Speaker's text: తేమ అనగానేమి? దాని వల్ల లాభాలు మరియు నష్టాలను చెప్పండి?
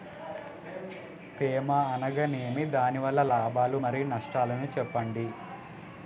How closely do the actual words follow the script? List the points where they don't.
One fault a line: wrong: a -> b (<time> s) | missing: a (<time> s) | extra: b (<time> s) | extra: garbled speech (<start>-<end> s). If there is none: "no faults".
no faults